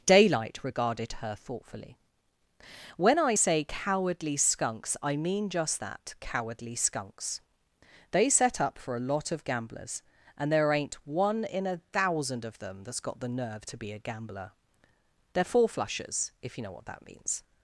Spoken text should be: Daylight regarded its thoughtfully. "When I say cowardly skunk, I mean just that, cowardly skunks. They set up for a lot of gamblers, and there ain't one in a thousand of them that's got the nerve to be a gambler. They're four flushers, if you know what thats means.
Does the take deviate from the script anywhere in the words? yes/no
yes